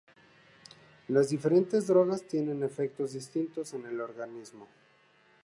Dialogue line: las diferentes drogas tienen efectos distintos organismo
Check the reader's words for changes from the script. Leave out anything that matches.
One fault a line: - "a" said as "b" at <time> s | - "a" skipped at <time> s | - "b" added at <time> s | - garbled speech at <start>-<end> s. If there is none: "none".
- "en el" added at 3.8 s